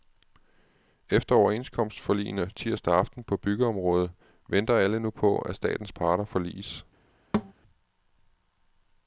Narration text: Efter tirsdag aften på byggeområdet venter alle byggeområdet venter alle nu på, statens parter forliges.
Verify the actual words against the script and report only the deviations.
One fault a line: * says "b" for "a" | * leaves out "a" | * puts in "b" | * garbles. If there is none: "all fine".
* puts in "overenskomstforligene"
* leaves out "byggeområdet venter alle"
* puts in "at"